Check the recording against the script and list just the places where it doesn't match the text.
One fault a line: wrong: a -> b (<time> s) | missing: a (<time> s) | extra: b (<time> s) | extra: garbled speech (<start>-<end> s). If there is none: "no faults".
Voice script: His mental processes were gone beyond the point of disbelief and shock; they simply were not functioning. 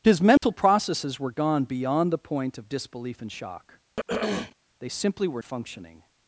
missing: not (5.4 s)